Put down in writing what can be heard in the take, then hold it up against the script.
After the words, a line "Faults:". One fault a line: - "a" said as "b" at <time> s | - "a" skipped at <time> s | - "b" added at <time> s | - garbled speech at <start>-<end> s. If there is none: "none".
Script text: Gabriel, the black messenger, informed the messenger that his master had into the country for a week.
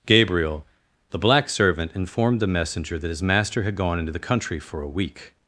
Gabriel, the black servant, informed the messenger that his master had gone into the country for a week.
Faults:
- "messenger" said as "servant" at 1.5 s
- "gone" added at 3.7 s